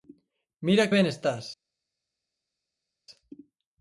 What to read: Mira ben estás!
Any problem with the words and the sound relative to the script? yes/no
no